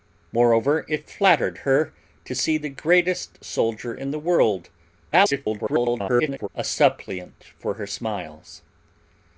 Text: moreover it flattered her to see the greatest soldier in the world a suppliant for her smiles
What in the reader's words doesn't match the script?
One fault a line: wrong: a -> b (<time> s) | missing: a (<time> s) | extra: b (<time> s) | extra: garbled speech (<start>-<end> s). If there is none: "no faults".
extra: garbled speech (5.1-6.5 s)